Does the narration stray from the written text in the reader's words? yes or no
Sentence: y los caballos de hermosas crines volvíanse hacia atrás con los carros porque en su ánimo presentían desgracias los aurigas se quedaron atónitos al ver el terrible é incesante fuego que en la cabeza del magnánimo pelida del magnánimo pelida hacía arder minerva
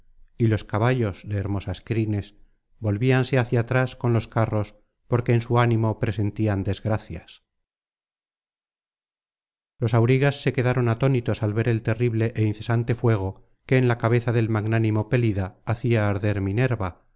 yes